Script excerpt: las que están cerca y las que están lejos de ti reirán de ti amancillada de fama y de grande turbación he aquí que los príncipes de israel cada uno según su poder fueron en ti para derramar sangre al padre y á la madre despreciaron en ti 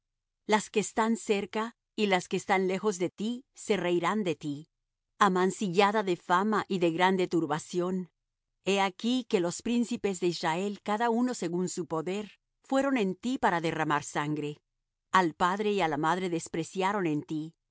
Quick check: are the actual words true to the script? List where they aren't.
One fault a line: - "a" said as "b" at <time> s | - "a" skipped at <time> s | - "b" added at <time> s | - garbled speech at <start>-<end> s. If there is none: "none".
- "se" added at 3.5 s